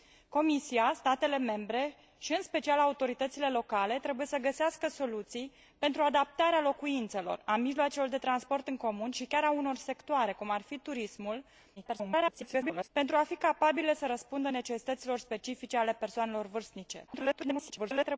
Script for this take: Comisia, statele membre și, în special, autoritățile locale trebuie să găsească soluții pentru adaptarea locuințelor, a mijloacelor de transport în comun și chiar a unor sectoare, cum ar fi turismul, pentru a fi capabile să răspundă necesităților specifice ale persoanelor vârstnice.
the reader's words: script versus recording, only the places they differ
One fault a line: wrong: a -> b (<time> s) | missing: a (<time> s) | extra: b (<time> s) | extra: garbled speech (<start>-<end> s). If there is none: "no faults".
extra: garbled speech (11.8-12.9 s)
extra: garbled speech (17.1-18.2 s)